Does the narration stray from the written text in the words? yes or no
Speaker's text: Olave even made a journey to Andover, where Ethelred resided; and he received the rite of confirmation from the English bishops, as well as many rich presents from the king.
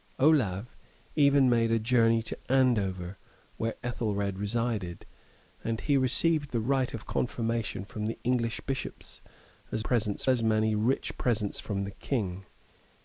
yes